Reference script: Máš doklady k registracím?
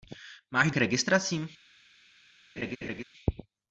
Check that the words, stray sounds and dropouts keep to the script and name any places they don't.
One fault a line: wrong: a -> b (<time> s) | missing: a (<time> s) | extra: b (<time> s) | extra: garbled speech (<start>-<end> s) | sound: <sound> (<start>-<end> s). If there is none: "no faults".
missing: doklady (0.7 s)
sound: laugh (2.6-3.0 s)